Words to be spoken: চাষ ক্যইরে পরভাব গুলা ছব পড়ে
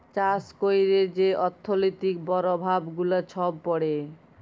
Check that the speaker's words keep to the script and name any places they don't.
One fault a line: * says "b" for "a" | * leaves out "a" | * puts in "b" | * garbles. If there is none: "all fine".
* puts in "যে অথ্থলৈতিক"